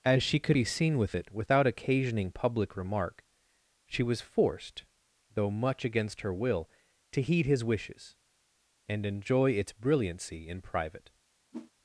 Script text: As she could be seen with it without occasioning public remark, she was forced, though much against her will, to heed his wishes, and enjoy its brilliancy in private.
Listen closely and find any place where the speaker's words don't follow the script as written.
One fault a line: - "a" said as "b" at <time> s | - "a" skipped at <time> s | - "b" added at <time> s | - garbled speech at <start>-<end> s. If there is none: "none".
none